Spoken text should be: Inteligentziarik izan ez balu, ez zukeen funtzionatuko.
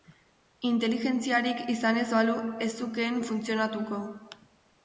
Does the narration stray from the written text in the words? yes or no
no